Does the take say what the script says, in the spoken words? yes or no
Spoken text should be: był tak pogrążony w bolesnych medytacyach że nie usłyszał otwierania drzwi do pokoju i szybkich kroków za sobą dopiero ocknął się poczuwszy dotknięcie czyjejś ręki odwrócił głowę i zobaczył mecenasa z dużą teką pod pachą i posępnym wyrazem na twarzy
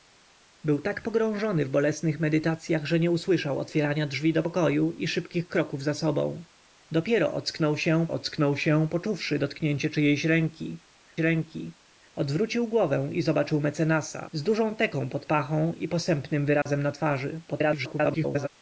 no